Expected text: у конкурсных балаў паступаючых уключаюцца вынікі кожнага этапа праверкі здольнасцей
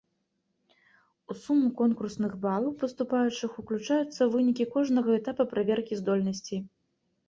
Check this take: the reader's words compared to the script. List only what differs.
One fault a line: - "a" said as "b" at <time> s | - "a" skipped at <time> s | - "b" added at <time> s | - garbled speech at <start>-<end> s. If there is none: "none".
- "суму" added at 1.4 s